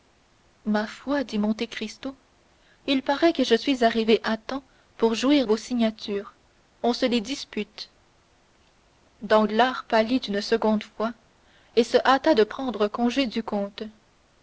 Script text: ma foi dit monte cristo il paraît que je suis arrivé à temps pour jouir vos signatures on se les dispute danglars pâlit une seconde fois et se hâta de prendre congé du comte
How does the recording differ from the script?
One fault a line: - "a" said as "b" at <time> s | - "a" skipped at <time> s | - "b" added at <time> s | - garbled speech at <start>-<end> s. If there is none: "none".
none